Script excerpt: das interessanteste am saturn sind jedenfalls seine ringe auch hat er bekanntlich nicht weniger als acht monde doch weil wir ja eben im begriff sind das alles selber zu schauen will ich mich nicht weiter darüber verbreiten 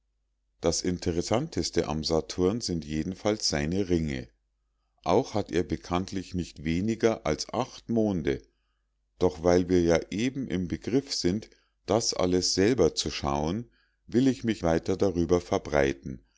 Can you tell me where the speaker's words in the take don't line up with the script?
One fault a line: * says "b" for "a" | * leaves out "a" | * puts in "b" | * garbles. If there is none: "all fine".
* leaves out "nicht"